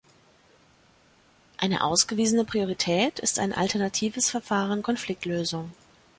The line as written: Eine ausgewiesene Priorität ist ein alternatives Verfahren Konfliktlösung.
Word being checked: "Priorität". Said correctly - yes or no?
yes